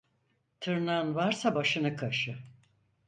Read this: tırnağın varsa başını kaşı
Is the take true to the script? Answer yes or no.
yes